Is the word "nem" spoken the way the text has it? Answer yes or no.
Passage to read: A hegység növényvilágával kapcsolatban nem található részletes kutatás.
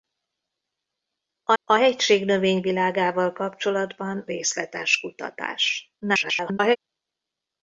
no